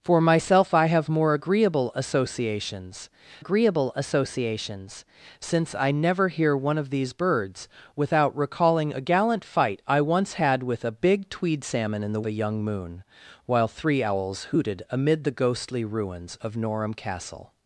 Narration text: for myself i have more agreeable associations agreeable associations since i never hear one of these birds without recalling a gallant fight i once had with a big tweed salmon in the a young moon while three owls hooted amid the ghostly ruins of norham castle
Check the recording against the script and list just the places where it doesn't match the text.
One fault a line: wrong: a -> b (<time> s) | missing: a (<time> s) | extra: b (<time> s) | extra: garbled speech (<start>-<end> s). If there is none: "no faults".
no faults